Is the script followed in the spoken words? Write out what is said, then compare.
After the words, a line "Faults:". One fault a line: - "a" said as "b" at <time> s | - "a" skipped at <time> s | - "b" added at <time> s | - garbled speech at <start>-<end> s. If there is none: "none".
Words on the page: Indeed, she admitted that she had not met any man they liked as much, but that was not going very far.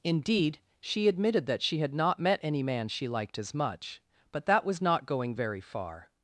Indeed, she admitted that she had not met any man she liked as much, but that was not going very far.
Faults:
- "they" said as "she" at 2.9 s